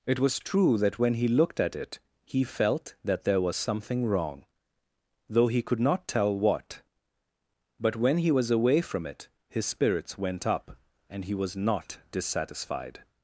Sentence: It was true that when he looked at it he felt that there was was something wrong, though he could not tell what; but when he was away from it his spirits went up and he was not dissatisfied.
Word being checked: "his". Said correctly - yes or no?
yes